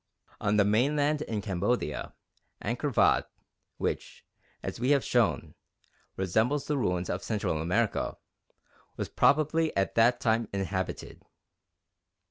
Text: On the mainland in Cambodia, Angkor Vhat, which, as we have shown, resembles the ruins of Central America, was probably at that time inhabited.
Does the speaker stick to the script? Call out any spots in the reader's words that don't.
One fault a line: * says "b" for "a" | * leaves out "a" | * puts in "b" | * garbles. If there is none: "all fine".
all fine